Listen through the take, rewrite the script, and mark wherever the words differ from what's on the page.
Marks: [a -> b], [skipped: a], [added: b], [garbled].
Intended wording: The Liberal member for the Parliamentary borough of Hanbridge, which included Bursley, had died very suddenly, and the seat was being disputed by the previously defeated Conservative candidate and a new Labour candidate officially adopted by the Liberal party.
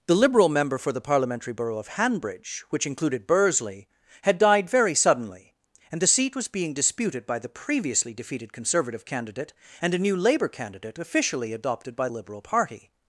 The Liberal member for the Parliamentary borough of Hanbridge, which included Bursley, had died very suddenly, and the seat was being disputed by the previously defeated Conservative candidate and a new Labour candidate officially adopted by [skipped: the] Liberal party.